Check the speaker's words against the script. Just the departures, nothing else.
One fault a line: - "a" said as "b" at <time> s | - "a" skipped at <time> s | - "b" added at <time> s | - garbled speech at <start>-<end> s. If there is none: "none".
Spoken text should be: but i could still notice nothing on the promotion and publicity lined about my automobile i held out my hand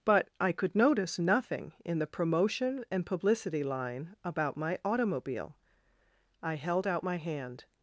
- "still" skipped at 0.8 s
- "on" said as "in" at 1.9 s
- "lined" said as "line" at 3.6 s